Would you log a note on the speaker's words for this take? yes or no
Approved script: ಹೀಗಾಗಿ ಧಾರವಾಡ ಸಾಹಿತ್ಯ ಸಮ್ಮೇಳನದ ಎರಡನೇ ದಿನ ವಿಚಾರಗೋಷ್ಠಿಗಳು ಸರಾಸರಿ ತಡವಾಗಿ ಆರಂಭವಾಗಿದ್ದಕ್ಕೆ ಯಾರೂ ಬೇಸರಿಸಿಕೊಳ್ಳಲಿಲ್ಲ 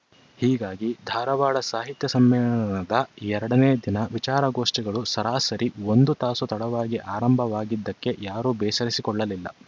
yes